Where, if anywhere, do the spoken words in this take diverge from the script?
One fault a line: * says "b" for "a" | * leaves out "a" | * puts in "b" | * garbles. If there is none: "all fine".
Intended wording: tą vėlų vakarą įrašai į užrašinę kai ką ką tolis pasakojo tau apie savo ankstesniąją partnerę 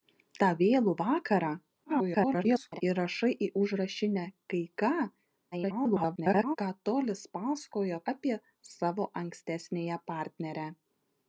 * garbles
* garbles
* leaves out "tau"